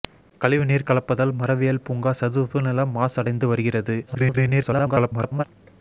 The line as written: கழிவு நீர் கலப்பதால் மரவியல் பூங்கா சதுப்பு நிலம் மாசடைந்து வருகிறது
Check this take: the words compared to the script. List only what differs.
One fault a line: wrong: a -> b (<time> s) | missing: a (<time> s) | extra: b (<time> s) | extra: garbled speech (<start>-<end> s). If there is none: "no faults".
extra: garbled speech (4.1-5.4 s)